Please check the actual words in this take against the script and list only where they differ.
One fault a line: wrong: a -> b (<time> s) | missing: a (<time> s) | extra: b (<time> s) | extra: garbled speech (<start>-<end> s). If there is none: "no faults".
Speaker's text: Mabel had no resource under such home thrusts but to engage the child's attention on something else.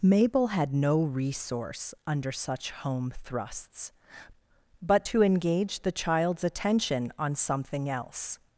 no faults